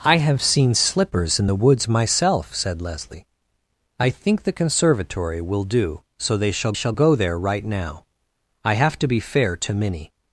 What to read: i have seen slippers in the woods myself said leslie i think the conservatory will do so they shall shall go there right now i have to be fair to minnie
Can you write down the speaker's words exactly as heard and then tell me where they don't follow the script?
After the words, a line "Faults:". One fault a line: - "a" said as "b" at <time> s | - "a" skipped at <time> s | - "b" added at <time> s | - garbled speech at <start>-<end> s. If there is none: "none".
i have seen slippers in the woods myself said leslie i think the conservatory will do so they shall shall go there right now i have to be fair to minnie
Faults:
none